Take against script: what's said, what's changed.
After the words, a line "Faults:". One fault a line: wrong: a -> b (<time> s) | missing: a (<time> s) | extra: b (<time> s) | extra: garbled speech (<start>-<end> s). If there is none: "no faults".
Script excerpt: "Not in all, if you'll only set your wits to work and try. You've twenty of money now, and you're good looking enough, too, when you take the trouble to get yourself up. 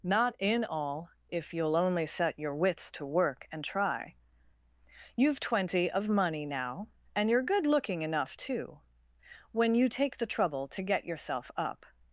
"Not in all, if you'll only set your wits to work and try. You've twenty of money now, and you're good looking enough, too, when you take the trouble to get yourself up.
Faults:
no faults